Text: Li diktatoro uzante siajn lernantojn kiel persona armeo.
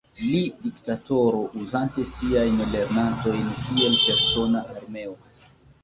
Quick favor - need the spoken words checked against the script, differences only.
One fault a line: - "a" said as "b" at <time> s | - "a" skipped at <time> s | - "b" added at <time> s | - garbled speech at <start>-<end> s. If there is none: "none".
none